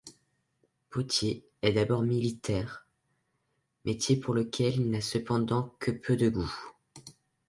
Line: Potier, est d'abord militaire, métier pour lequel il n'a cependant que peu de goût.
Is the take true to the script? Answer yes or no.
yes